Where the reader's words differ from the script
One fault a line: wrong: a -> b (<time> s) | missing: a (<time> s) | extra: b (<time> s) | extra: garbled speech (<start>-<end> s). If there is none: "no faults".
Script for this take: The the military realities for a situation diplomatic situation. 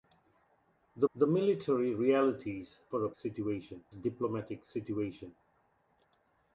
no faults